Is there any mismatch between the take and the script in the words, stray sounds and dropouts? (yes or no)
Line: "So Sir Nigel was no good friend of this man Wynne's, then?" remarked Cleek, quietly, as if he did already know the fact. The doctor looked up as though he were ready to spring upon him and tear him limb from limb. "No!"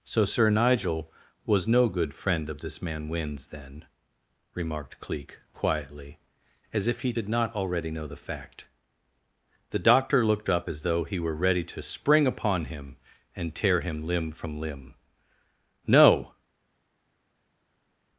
yes